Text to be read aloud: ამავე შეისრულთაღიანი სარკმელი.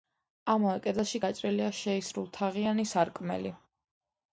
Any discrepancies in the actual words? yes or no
yes